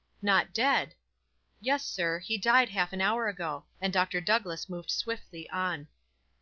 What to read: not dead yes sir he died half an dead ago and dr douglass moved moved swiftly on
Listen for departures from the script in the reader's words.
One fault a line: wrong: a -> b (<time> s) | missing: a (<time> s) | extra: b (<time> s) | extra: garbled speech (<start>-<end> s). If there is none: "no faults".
wrong: dead -> hour (3.0 s)
missing: moved (4.9 s)